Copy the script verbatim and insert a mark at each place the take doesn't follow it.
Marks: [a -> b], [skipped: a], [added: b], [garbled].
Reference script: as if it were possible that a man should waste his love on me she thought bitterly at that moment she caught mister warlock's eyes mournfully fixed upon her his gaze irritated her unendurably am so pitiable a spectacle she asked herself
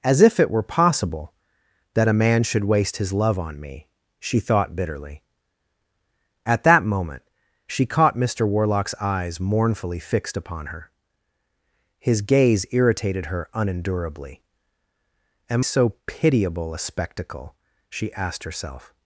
as if it were possible that a man should waste his love on me she thought bitterly at that moment she caught mister warlock's eyes mournfully fixed upon her his gaze irritated her unendurably am so pitiable a spectacle she asked herself